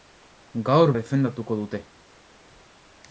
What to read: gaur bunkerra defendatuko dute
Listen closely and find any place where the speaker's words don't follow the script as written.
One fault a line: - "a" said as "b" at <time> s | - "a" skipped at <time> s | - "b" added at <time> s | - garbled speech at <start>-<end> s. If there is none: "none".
- "bunkerra" skipped at 0.9 s